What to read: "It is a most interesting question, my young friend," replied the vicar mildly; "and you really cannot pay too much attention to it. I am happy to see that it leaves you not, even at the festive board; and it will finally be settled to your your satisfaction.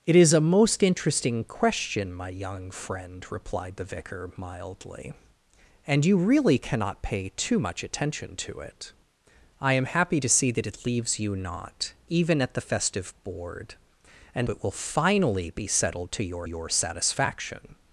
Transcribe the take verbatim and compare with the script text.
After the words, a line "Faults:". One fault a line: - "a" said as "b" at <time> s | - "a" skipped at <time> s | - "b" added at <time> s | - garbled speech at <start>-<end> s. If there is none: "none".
"It is a most interesting question, my young friend," replied the vicar mildly; "and you really cannot pay too much attention to it. I am happy to see that it leaves you not, even at the festive board; and it will finally be settled to your your satisfaction.
Faults:
none